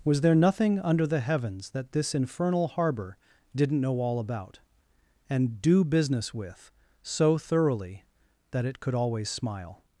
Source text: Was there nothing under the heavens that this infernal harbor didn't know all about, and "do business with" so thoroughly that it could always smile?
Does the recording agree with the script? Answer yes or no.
yes